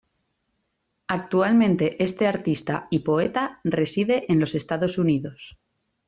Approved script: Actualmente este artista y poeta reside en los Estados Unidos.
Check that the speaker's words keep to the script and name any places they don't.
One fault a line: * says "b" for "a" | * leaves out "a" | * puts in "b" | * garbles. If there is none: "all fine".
all fine